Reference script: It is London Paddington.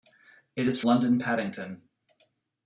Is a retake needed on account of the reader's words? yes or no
no